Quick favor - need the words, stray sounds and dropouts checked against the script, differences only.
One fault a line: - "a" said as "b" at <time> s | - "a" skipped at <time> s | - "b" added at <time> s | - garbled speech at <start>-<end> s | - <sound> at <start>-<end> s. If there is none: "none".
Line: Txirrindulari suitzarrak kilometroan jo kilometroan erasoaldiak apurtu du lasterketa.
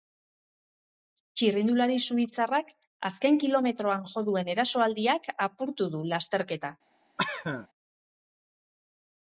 - "azken" added at 3.1 s
- "kilometroan" said as "duen" at 4.3 s
- cough at 7.2-7.7 s